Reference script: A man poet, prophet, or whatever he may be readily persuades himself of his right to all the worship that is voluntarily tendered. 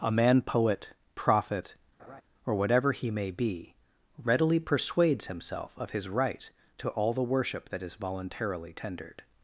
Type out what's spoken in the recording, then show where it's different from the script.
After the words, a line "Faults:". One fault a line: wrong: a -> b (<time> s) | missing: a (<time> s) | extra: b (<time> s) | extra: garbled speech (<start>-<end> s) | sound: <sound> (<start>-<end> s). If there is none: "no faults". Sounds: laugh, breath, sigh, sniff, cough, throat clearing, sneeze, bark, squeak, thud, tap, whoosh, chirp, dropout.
A man poet, prophet, or whatever he may be readily persuades himself of his right to all the worship that is voluntarily tendered.
Faults:
sound: laugh (2.0-2.2 s)